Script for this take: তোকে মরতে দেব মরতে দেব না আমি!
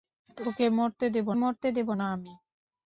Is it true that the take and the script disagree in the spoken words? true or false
false